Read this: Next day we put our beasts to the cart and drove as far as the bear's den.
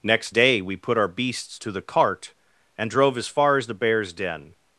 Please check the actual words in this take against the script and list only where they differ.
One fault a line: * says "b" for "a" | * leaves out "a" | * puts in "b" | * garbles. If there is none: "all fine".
all fine